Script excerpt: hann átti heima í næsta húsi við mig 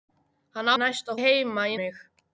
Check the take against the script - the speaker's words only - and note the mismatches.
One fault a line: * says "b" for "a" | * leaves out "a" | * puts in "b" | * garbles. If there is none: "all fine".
* says "næsta" for "átti"
* leaves out "næsta húsi við"